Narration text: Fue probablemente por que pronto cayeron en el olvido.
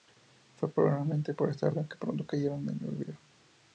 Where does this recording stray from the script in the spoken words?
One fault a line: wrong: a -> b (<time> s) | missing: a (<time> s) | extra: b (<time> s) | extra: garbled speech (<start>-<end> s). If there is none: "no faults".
extra: esta razón (1.5 s)